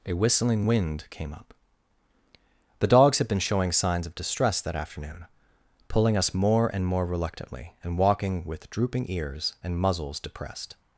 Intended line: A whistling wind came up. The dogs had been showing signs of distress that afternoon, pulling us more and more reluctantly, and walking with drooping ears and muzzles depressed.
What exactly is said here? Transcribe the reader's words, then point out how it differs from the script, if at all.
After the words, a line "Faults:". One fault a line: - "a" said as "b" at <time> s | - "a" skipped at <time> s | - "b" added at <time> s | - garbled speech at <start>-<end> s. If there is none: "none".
A whistling wind came up. The dogs had been showing signs of distress that afternoon, pulling us more and more reluctantly, and walking with drooping ears and muzzles depressed.
Faults:
none